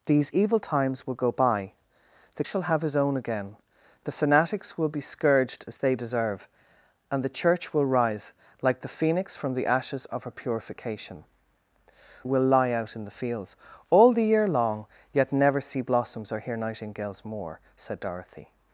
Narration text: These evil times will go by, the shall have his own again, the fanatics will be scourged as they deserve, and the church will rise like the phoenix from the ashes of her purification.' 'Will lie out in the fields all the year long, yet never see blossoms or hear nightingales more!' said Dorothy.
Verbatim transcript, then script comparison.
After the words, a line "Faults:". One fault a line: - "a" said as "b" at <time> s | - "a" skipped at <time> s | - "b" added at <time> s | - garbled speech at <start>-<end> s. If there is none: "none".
These evil times will go by, the shall have his own again, the fanatics will be scourged as they deserve, and the church will rise like the phoenix from the ashes of her purification.' 'Will lie out in the fields all the year long, yet never see blossoms or hear nightingales more!' said Dorothy.
Faults:
none